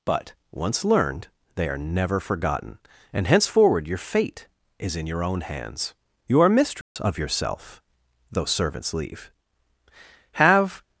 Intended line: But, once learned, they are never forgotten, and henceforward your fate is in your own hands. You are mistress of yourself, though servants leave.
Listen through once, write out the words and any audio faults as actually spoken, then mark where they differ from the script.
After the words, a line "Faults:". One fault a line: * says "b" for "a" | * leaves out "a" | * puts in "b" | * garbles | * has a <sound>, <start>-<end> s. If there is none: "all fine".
But, once learned, they are never forgotten, and henceforward your fate is in your own hands. You are mistress of yourself, though servants leave. Have
Faults:
* has a dropout, 6.8-7.0 s
* puts in "Have"